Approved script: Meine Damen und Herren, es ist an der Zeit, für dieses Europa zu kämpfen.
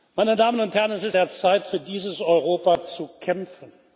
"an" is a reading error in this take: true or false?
true